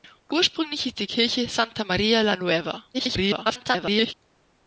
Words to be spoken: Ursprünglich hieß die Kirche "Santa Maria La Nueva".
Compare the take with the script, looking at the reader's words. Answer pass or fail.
fail